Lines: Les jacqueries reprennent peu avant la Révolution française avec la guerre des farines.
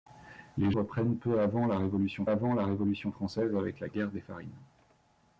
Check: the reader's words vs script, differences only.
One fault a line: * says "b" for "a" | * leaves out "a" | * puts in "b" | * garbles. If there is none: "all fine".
* leaves out "jacqueries"
* puts in "avant la Révolution"